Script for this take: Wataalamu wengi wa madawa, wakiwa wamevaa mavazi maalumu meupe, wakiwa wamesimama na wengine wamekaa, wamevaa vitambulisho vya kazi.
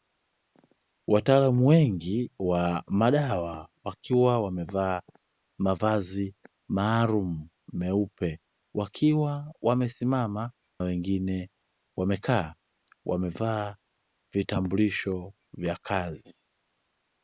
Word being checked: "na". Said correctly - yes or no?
no